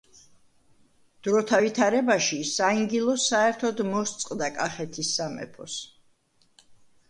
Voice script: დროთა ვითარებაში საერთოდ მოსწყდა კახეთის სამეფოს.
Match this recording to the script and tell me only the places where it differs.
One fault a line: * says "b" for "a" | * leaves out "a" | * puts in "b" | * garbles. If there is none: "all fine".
* puts in "საინგილო"